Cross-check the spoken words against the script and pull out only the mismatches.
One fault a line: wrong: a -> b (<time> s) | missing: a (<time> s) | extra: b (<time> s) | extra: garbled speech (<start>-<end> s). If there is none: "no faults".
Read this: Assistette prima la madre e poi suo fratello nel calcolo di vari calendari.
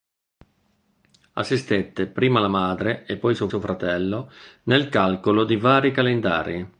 extra: suo (3.5 s)